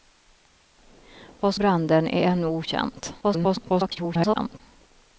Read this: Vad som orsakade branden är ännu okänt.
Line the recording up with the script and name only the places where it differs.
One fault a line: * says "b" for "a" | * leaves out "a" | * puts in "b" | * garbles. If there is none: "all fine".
* leaves out "som orsakade"
* garbles